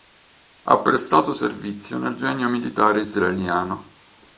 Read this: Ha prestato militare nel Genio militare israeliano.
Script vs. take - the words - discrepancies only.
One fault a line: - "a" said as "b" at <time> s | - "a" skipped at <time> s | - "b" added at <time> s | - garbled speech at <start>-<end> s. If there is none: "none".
- "militare" said as "servizio" at 1.3 s